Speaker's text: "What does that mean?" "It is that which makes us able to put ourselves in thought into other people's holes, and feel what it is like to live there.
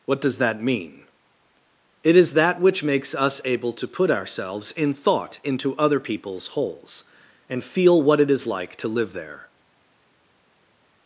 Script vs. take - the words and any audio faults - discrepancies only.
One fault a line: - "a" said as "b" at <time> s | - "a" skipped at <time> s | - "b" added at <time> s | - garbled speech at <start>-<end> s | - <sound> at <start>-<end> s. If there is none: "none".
none